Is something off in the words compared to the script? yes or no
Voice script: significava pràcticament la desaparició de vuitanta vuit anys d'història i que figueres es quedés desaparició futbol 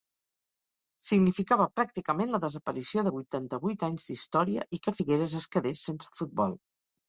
yes